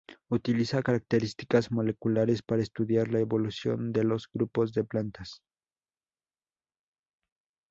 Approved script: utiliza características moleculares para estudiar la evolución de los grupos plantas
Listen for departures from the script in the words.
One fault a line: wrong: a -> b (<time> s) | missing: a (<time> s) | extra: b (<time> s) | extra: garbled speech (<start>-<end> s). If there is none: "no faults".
extra: de (4.7 s)